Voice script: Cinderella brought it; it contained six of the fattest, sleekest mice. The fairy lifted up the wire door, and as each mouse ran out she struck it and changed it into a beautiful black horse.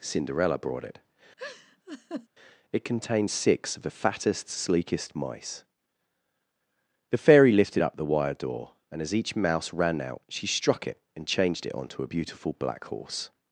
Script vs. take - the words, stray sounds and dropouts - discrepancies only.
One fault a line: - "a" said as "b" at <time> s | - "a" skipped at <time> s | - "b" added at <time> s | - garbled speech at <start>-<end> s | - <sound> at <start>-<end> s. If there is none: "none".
- laugh at 1.4-2.3 s
- "into" said as "onto" at 11.7 s